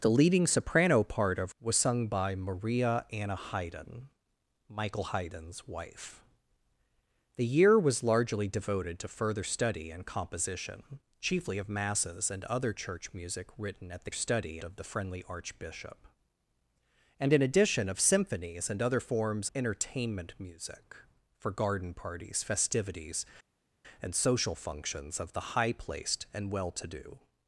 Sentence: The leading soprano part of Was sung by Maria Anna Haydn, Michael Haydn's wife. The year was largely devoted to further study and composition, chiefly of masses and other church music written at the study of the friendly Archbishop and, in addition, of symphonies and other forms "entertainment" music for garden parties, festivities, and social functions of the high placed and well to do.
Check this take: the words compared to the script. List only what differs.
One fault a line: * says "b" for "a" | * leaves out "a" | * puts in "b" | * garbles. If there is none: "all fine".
all fine